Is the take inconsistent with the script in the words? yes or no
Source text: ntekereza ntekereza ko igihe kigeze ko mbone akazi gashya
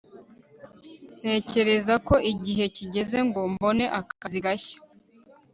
yes